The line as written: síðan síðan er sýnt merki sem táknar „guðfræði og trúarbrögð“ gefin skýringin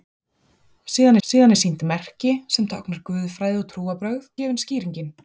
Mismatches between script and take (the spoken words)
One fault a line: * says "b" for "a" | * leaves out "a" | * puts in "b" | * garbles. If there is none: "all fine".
all fine